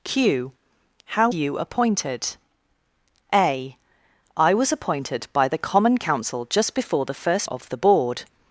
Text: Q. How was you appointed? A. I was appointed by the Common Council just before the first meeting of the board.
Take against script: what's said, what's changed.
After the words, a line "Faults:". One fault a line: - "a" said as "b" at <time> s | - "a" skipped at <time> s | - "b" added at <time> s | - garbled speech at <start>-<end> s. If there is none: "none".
Q. How you appointed? A. I was appointed by the Common Council just before the first of the board.
Faults:
- "was" skipped at 1.3 s
- "meeting" skipped at 7.5 s